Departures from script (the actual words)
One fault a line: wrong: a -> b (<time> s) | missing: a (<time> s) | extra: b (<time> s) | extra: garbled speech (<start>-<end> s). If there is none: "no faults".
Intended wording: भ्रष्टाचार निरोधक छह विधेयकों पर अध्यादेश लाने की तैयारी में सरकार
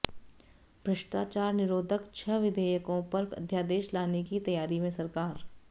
no faults